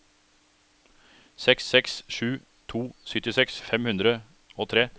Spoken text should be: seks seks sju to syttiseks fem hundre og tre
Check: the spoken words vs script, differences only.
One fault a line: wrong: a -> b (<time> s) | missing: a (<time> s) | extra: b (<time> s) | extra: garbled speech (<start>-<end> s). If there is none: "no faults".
no faults